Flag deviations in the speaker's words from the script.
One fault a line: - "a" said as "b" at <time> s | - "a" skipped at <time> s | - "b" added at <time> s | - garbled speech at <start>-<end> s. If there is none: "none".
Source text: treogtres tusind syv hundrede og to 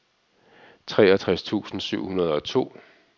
none